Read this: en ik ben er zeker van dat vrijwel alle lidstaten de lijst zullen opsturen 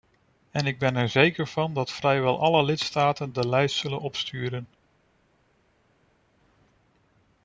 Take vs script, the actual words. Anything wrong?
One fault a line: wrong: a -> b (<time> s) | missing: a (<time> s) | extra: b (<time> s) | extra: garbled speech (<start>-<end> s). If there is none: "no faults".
no faults